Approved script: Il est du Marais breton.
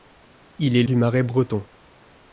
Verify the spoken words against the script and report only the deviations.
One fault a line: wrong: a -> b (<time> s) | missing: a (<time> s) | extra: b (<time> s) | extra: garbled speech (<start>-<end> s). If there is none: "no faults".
no faults